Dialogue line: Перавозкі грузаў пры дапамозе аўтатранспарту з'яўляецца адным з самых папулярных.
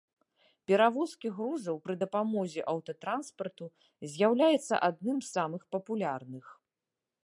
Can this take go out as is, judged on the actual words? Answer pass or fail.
pass